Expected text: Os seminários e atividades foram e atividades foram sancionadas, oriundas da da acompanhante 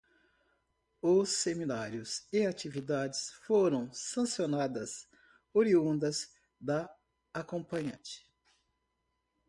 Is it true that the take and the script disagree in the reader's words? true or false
true